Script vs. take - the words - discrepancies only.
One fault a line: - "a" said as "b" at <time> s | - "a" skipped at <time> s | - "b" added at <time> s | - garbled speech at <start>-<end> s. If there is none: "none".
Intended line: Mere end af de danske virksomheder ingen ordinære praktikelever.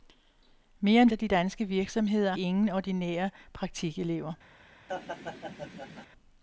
none